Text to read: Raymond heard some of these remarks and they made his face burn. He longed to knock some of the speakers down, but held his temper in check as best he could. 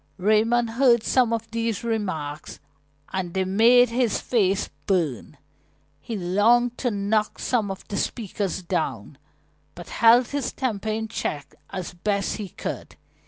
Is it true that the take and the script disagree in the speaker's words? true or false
false